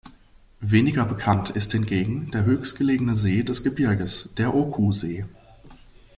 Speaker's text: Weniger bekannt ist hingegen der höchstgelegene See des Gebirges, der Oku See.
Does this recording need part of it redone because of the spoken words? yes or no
no